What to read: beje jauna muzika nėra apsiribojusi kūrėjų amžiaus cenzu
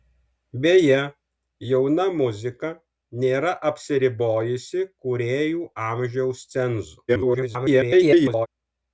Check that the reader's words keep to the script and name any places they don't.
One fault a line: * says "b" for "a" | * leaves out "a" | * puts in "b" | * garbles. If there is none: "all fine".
* garbles